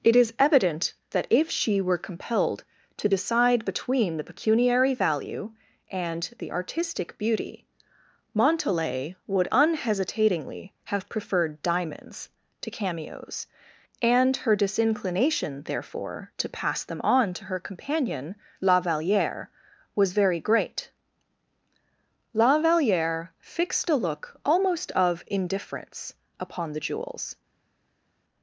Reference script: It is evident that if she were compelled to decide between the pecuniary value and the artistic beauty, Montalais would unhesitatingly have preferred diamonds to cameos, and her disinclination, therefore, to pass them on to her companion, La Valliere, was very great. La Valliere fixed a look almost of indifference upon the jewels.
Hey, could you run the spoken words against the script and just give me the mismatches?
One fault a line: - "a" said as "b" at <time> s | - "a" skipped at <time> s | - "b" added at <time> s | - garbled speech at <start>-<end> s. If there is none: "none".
none